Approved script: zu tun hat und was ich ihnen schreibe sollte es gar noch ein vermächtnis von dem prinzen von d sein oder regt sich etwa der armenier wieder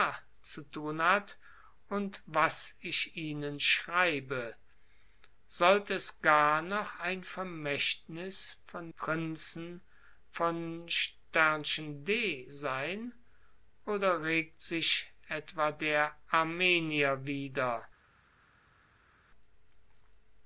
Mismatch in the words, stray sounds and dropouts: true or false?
true